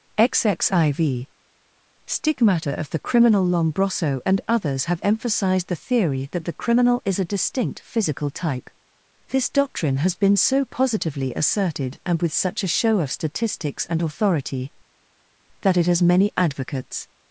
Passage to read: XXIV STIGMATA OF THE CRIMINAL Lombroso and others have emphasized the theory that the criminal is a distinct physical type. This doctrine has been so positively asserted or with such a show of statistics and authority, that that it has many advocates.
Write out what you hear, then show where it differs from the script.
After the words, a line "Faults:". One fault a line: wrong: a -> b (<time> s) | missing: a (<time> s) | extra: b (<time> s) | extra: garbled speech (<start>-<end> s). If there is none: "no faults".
XXIV STIGMATA OF THE CRIMINAL Lombroso and others have emphasized the theory that the criminal is a distinct physical type. This doctrine has been so positively asserted and with such a show of statistics and authority, that it has many advocates.
Faults:
wrong: or -> and (12.0 s)
missing: that (15.8 s)